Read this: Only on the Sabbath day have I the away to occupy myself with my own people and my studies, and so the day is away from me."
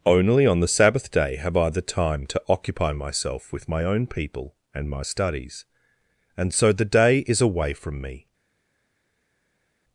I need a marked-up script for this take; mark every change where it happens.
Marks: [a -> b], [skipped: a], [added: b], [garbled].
Only on the Sabbath day have I the [away -> time] to occupy myself with my own people and my studies, and so the day is away from me."